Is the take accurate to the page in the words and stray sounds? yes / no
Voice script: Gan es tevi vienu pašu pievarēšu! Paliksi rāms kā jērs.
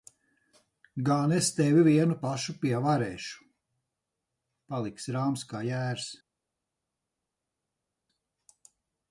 yes